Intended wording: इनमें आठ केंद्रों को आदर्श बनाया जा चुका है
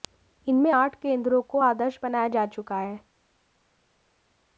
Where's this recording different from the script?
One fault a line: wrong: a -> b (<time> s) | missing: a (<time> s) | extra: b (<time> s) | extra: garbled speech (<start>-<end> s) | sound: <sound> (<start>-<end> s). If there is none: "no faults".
no faults